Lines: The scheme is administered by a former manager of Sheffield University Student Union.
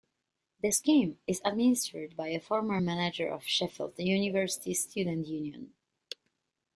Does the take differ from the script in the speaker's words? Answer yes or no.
no